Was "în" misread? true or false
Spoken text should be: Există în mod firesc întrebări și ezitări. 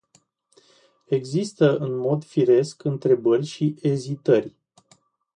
false